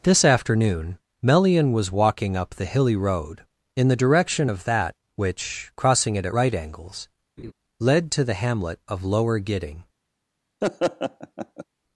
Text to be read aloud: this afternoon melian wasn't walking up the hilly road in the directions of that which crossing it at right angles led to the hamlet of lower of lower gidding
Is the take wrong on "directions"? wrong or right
wrong